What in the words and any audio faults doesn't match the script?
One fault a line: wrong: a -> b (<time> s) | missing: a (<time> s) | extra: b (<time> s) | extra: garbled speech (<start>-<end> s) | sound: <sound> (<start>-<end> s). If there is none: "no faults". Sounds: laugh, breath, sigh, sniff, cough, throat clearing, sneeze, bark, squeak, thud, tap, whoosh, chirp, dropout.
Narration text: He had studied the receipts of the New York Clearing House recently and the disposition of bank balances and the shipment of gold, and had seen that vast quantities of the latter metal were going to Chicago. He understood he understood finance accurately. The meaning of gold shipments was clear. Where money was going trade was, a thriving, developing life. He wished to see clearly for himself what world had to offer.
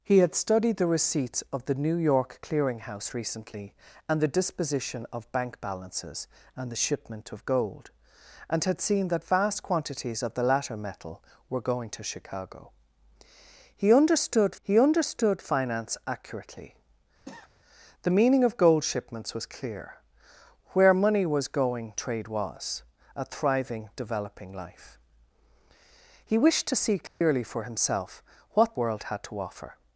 sound: cough (17.2-17.5 s)
sound: dropout (27.1-27.2 s)